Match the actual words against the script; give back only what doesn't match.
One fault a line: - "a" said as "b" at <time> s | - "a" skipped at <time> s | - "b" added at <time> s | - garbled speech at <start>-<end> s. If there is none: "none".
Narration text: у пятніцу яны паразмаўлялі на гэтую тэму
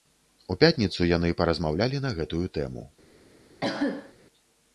none